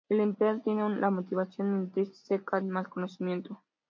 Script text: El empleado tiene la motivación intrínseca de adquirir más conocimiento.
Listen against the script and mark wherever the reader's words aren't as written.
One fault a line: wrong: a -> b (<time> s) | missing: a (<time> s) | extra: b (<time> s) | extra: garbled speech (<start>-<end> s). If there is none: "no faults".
missing: de adquirir (2.6 s)